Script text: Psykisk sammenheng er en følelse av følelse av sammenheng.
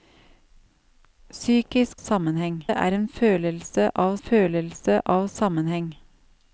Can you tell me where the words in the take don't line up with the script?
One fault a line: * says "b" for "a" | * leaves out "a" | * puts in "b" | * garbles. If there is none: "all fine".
all fine